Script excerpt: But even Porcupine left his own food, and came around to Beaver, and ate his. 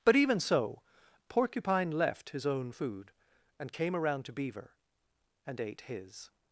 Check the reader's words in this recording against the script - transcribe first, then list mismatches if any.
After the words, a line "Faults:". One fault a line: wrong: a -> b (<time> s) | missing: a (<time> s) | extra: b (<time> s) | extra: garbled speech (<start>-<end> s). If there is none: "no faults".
But even so, Porcupine left his own food, and came around to Beaver, and ate his.
Faults:
extra: so (0.4 s)